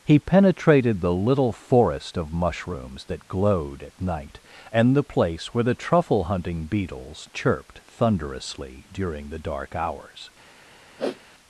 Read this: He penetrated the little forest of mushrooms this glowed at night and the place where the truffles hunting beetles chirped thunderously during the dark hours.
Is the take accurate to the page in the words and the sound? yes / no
no